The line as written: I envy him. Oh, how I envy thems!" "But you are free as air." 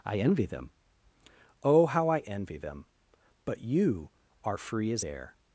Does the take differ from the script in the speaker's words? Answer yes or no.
yes